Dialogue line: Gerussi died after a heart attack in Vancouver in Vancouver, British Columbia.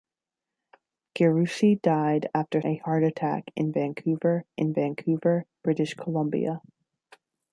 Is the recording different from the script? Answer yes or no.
no